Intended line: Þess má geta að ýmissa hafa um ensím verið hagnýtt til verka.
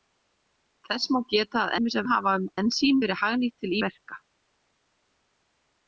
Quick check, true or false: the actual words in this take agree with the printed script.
true